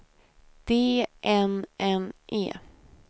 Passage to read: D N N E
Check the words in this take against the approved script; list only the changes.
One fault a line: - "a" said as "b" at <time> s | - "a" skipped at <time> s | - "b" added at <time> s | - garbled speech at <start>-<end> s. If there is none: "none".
none